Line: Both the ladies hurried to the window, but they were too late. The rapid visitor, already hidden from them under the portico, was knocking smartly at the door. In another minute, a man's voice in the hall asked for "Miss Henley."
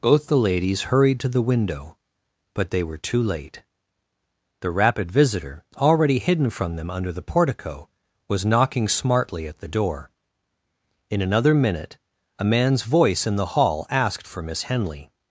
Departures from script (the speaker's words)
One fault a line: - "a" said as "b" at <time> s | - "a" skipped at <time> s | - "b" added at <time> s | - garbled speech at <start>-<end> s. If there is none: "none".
none